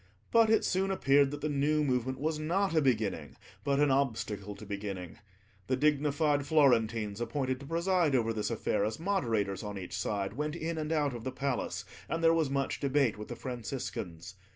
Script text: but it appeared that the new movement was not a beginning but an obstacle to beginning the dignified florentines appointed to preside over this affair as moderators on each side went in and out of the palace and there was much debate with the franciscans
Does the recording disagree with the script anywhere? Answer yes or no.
yes